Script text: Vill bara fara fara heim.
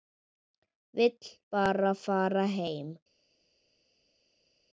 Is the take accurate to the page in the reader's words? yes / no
no